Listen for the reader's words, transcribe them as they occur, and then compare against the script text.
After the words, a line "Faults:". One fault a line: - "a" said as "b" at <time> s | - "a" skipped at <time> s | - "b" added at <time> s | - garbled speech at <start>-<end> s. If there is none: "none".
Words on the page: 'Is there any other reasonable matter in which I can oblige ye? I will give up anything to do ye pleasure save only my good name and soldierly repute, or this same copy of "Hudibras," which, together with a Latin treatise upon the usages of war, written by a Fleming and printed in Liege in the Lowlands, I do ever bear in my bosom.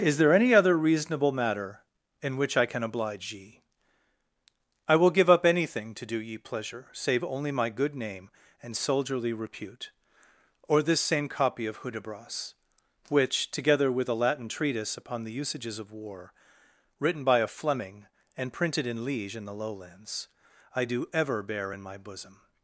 'Is there any other reasonable matter in which I can oblige ye? I will give up anything to do ye pleasure save only my good name and soldierly repute, or this same copy of "Hudibras," which, together with a Latin treatise upon the usages of war, written by a Fleming and printed in Liege in the Lowlands, I do ever bear in my bosom.
Faults:
none